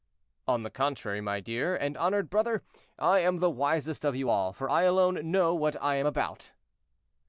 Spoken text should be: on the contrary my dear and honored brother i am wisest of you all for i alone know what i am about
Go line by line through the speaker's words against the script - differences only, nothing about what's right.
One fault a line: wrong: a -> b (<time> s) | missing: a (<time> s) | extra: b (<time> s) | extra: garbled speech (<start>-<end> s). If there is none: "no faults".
extra: the (3.4 s)